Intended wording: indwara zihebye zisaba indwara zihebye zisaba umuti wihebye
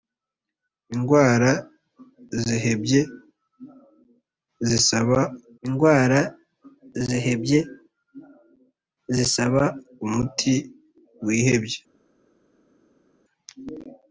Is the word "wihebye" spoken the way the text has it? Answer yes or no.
yes